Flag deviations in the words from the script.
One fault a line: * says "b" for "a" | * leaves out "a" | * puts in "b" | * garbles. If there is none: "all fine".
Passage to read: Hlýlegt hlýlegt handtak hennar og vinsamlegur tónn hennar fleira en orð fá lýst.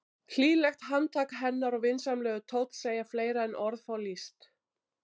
* leaves out "hlýlegt"
* says "segja" for "hennar"